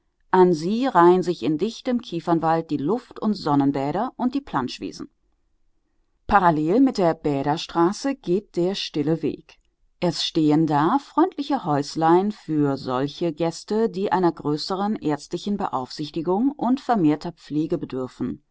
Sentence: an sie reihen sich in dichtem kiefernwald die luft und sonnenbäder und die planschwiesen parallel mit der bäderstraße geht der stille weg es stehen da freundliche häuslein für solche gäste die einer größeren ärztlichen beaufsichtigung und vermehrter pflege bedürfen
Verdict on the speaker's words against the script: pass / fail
pass